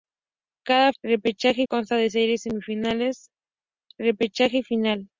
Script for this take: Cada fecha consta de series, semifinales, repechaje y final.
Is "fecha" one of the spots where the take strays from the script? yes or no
yes